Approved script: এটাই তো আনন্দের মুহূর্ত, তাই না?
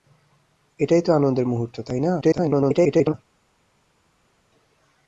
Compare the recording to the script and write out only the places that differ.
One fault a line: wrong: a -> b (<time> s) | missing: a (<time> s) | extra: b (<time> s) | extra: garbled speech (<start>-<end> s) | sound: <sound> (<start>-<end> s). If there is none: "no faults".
extra: garbled speech (2.2-3.1 s)